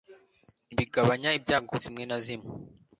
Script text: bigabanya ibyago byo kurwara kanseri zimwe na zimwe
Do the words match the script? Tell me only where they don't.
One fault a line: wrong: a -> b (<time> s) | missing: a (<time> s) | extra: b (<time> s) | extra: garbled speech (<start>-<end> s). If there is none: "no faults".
missing: byo kurwara kanseri (1.7 s)